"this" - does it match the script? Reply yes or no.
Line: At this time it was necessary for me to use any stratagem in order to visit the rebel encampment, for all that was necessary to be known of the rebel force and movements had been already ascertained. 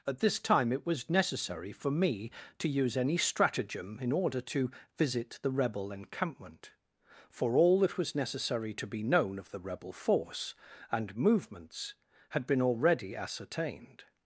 yes